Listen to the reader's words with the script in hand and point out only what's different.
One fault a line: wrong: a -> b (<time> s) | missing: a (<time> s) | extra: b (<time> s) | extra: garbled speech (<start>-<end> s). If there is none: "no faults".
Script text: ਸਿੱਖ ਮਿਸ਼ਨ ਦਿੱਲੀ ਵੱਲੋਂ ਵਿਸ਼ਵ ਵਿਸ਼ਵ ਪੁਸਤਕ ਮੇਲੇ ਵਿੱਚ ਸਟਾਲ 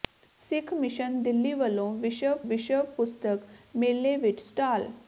no faults